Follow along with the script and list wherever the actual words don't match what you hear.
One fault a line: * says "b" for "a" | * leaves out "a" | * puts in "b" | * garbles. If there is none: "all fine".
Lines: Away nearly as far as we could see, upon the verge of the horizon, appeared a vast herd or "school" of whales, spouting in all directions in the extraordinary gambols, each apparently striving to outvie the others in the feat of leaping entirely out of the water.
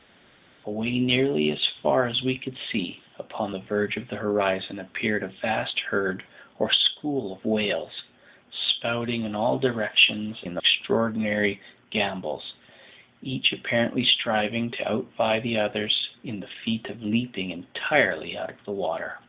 all fine